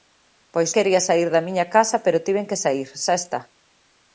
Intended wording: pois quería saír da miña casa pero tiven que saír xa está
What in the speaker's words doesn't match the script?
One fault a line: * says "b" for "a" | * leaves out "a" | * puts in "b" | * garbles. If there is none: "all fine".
all fine